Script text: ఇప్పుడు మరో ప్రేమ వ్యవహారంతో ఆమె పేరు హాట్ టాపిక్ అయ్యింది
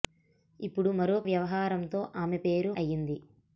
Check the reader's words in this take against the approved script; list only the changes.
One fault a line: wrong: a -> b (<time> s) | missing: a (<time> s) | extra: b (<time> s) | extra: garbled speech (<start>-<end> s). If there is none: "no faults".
missing: ప్రేమ (1.2 s)
missing: హాట్ టాపిక్ (2.7 s)